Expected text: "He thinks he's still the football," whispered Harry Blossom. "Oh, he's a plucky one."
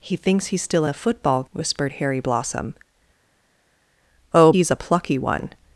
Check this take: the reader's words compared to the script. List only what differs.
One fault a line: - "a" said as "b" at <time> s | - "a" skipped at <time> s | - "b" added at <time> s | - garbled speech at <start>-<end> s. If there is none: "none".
none